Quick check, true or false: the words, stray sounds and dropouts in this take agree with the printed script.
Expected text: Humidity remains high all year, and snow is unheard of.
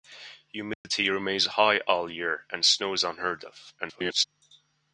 false